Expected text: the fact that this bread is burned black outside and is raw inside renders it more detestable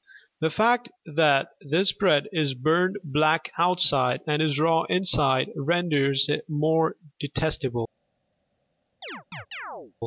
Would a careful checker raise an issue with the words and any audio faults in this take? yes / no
yes